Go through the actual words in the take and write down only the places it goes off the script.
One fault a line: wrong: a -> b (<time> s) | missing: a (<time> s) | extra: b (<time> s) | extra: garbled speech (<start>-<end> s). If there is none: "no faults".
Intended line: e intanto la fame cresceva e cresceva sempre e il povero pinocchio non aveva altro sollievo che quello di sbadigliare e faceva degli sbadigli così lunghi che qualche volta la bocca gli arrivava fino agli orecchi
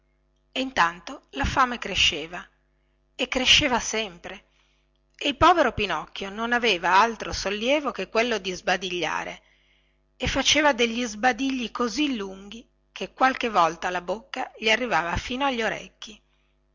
no faults